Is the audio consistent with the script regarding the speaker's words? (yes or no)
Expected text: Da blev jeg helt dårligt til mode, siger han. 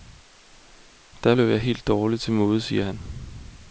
yes